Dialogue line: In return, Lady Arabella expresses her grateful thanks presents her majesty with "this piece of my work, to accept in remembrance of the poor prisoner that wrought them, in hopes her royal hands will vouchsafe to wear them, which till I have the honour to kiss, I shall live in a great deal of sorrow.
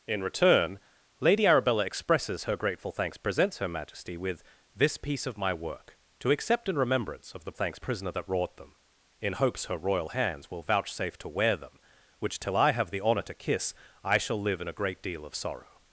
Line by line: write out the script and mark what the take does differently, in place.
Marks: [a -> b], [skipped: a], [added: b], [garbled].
In return, Lady Arabella expresses her grateful thanks presents her majesty with "this piece of my work, to accept in remembrance of the [poor -> thanks] prisoner that wrought them, in hopes her royal hands will vouchsafe to wear them, which till I have the honour to kiss, I shall live in a great deal of sorrow.